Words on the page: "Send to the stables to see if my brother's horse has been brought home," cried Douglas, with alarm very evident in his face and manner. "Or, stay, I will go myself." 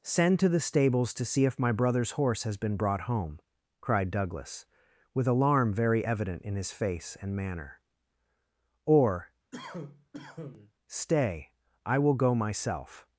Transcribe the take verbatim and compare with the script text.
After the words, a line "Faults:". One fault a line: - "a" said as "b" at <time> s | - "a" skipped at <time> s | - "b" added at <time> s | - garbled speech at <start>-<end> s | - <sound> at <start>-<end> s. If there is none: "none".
"Send to the stables to see if my brother's horse has been brought home," cried Douglas, with alarm very evident in his face and manner. "Or, stay, I will go myself."
Faults:
- cough at 9.5-10.7 s